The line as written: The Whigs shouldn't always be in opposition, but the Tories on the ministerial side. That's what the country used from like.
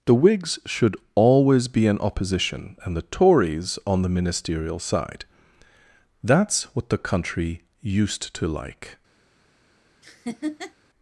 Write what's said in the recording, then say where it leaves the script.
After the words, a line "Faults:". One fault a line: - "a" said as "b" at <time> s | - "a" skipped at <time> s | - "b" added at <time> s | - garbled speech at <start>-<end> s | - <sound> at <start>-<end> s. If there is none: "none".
The Whigs should always be in opposition, and the Tories on the ministerial side. That's what the country used to like.
Faults:
- "shouldn't" said as "should" at 0.7 s
- "but" said as "and" at 2.8 s
- "from" said as "to" at 8.3 s
- laugh at 10.0-10.7 s